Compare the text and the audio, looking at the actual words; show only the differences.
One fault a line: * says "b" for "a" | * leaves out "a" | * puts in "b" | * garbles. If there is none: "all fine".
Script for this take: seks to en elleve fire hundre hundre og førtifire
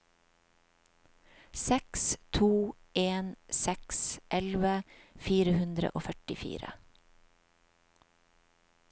* puts in "seks"
* leaves out "hundre"